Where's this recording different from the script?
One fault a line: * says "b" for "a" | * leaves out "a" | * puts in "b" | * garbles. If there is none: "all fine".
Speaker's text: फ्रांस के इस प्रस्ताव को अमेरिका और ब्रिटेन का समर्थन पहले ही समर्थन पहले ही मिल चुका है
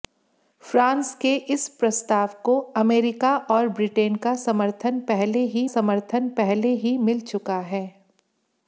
all fine